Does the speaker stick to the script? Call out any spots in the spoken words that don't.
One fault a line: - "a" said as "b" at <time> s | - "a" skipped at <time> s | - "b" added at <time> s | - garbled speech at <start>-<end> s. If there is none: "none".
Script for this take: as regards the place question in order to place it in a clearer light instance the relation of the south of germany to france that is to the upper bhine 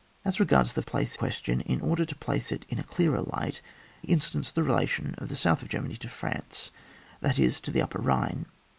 none